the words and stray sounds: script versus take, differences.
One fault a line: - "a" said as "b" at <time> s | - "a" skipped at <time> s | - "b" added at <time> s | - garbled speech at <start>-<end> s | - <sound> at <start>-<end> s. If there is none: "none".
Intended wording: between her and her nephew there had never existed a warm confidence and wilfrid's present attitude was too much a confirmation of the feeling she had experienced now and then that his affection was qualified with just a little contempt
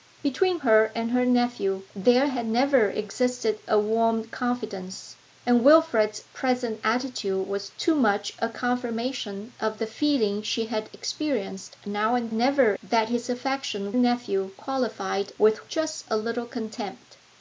- "then" said as "never" at 12.3 s
- "was" said as "nephew" at 14.0 s